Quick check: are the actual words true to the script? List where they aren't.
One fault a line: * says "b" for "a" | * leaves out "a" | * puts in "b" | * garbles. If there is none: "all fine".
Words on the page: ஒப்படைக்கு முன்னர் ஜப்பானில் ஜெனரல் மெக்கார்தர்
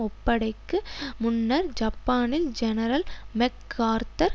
all fine